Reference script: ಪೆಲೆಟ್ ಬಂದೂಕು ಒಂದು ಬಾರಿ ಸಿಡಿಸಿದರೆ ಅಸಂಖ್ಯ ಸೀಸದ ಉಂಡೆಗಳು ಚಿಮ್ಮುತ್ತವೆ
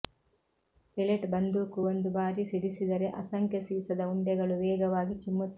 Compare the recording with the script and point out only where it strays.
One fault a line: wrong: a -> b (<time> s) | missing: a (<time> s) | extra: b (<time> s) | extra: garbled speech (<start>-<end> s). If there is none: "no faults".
extra: ವೇಗವಾಗಿ (4.6 s)